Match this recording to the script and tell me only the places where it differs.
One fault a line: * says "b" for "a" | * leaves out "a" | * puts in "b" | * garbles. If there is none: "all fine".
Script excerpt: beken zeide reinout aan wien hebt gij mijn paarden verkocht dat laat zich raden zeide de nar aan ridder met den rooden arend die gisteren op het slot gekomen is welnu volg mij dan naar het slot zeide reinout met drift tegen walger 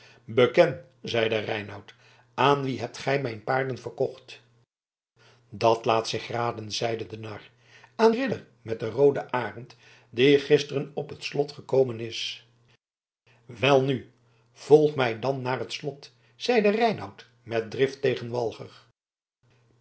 all fine